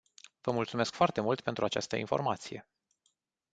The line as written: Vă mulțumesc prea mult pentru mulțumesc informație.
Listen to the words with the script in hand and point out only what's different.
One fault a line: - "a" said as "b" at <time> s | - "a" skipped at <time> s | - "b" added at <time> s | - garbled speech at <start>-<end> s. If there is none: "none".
- "prea" said as "foarte" at 0.9 s
- "mulțumesc" said as "această" at 1.7 s